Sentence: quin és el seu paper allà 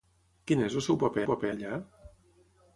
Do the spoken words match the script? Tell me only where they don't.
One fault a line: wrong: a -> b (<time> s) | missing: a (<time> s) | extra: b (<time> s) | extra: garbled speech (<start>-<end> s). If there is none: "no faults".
extra: paper (1.3 s)